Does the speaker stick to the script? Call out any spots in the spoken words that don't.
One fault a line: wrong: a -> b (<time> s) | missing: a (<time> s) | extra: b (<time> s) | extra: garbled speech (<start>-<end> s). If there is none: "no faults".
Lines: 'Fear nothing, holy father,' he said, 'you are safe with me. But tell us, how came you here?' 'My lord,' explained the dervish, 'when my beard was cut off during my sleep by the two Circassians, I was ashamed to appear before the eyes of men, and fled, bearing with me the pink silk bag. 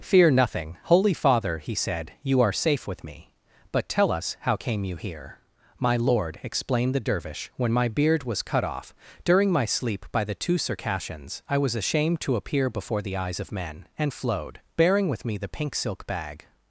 wrong: fled -> flowed (14.1 s)